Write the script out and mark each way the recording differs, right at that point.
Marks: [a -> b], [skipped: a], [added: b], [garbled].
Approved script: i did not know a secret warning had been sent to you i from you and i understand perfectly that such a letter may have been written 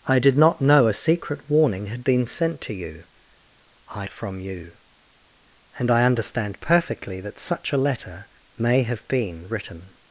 i did not know a secret warning had been sent to you i from you and i understand perfectly that such a letter may have been written